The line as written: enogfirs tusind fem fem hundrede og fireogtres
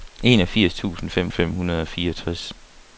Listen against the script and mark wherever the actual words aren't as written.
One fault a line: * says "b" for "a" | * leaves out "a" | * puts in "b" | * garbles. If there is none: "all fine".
all fine